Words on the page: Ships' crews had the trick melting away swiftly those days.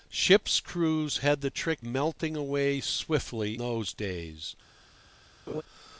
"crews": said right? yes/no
yes